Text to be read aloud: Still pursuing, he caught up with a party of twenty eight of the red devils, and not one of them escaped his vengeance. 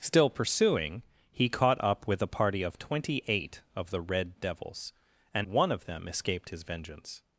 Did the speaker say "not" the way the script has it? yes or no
no